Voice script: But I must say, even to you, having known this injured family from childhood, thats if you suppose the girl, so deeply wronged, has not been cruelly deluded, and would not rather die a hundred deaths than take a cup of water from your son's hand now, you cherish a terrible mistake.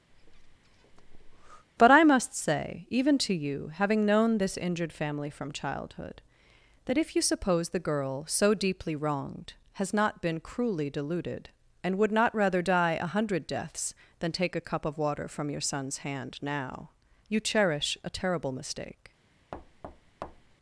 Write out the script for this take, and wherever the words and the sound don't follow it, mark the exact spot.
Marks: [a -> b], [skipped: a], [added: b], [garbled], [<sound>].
[breath] But I must say, even to you, having known this injured family from childhood, [thats -> that] if you suppose the girl, so deeply wronged, has not been cruelly deluded, and would not rather die a hundred deaths than take a cup of water from your son's hand now, you cherish a terrible mistake. [thud]